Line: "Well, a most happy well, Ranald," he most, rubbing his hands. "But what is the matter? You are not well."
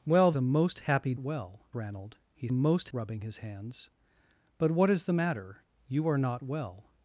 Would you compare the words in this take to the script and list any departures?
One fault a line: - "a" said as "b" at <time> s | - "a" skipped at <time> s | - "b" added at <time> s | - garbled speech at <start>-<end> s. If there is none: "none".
none